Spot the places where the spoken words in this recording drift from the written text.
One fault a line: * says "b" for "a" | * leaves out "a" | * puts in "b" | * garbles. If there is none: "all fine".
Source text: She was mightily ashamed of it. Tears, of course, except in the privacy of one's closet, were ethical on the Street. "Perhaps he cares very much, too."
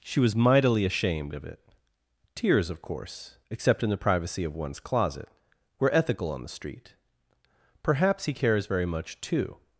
all fine